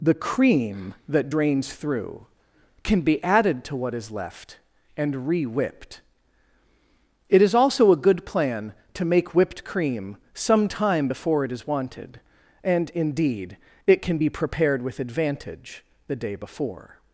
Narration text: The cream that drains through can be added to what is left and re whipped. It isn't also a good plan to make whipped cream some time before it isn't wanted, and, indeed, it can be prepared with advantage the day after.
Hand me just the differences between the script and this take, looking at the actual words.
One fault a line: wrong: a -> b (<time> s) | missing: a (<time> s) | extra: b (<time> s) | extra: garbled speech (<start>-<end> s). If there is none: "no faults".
wrong: isn't -> is (7.4 s)
wrong: isn't -> is (11.5 s)
wrong: after -> before (16.3 s)